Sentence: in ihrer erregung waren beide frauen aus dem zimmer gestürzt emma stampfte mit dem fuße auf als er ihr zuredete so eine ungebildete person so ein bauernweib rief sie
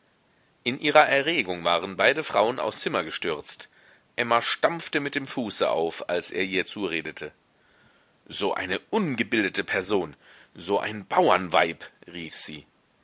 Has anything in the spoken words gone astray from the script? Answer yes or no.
yes